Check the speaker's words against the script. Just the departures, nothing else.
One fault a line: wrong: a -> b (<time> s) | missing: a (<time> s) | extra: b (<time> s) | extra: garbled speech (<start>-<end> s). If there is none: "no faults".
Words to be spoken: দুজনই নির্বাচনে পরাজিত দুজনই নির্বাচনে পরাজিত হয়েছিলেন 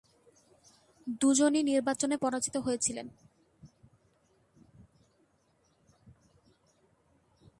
missing: দুজনই নির্বাচনে পরাজিত (2.6 s)